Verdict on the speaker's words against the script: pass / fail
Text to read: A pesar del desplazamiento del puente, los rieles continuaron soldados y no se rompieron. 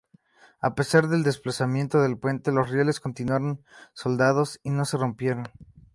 pass